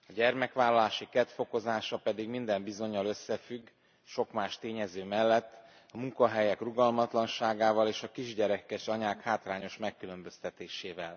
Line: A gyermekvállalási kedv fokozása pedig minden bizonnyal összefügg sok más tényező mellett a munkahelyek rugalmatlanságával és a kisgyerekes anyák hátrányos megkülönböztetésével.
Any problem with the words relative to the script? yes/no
no